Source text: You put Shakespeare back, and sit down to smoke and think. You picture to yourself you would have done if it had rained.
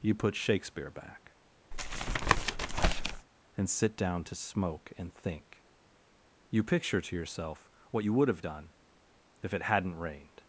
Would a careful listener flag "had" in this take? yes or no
yes